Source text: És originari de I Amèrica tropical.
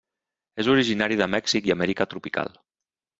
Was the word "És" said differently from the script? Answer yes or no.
no